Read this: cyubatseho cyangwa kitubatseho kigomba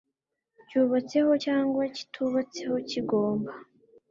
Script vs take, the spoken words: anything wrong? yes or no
no